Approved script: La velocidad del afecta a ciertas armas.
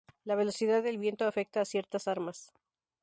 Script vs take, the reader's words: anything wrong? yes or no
yes